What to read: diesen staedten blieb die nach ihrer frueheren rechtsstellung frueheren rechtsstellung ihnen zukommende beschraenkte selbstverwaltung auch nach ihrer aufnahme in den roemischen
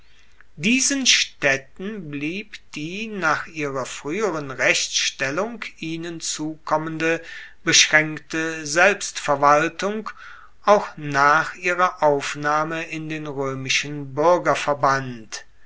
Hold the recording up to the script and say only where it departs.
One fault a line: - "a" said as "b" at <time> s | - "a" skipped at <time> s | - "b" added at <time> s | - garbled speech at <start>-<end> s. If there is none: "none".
- "frueheren rechtsstellung" skipped at 5.6 s